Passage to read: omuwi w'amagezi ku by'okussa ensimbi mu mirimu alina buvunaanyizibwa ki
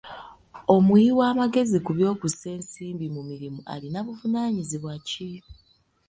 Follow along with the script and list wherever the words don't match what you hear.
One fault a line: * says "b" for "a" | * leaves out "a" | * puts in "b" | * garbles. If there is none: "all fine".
all fine